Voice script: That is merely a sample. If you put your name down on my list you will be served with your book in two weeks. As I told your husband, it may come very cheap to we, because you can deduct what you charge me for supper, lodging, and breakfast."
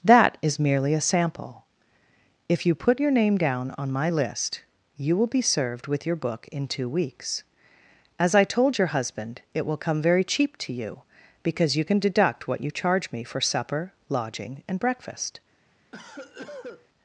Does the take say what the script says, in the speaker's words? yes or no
no